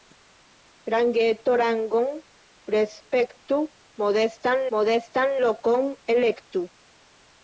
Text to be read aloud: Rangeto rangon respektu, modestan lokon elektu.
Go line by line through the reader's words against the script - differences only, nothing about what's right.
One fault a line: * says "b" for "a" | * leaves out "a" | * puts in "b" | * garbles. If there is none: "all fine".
* puts in "modestan"